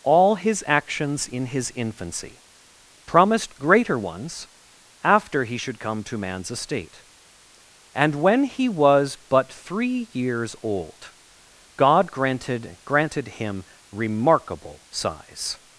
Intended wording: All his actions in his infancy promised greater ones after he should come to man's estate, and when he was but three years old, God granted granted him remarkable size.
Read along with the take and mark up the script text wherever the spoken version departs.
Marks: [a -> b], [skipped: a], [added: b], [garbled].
All his actions in his infancy promised greater ones after he should come to man's estate, and when he was but three years old, God granted granted him remarkable size.